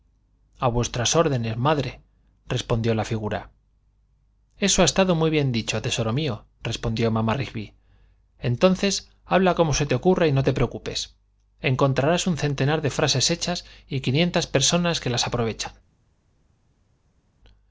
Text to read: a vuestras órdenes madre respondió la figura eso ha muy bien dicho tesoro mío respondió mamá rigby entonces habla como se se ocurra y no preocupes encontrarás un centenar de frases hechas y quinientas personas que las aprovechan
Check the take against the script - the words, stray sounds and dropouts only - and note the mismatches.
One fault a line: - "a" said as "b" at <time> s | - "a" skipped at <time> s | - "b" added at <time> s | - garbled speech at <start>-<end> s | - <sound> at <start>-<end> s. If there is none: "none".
- "estado" added at 4.8 s
- "se" said as "te" at 9.9 s
- "te" added at 10.4 s